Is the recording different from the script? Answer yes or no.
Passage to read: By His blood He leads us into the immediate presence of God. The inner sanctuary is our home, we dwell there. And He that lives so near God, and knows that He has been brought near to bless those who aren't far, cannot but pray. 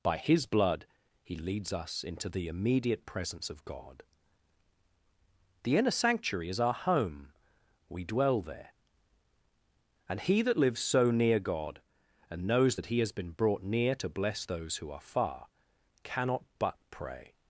yes